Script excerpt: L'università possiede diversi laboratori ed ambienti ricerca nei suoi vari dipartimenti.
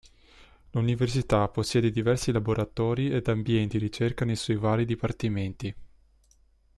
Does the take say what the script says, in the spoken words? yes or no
yes